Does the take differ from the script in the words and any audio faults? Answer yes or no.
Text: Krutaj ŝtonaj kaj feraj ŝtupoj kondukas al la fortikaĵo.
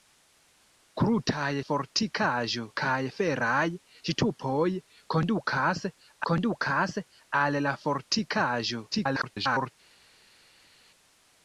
yes